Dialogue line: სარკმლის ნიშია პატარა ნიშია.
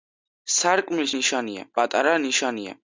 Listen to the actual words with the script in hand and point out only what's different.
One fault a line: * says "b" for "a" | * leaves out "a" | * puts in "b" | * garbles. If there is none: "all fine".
all fine